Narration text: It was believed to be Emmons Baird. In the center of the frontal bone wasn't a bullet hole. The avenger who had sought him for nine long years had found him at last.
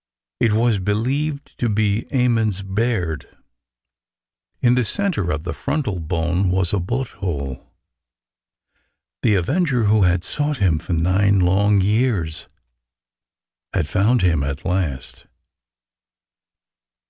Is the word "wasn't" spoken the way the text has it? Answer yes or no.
no